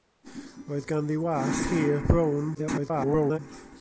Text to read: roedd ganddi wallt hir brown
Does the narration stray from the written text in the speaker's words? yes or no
yes